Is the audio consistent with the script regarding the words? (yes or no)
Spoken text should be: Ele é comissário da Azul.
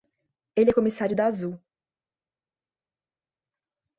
yes